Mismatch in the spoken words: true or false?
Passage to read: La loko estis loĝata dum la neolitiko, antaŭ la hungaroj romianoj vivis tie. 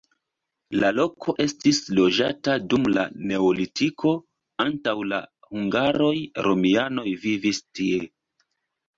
false